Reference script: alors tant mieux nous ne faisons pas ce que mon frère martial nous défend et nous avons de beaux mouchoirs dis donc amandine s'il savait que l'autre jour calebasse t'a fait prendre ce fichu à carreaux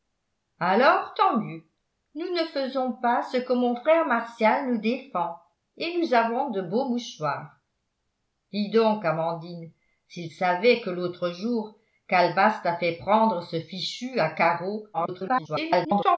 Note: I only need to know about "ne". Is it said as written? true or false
true